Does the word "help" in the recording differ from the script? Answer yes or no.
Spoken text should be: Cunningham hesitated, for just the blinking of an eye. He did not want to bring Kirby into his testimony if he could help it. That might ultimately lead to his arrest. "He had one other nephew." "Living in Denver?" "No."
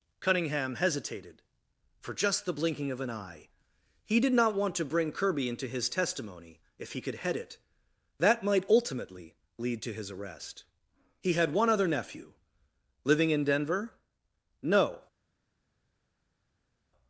yes